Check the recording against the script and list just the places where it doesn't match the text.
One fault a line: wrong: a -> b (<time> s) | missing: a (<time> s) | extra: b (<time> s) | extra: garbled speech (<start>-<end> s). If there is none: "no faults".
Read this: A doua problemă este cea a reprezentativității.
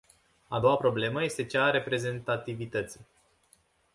no faults